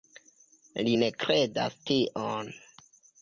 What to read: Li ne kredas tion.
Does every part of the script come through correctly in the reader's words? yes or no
yes